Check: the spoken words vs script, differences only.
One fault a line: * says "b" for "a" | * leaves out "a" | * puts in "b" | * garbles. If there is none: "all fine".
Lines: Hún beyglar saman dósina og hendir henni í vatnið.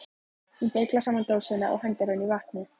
all fine